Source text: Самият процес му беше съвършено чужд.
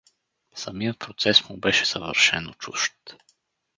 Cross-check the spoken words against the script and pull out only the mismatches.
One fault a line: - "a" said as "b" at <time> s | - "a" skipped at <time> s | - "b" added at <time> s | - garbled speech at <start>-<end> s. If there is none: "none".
none